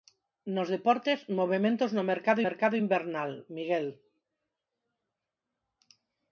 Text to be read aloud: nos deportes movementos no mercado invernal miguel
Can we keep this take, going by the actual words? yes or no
no